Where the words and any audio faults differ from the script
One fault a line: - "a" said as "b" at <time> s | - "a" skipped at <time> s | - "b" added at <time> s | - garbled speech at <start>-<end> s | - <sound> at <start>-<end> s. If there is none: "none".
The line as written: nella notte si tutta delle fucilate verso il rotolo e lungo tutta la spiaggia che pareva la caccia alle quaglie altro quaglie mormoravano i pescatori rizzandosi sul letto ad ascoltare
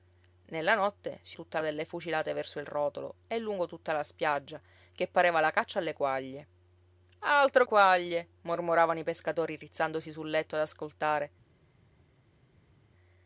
none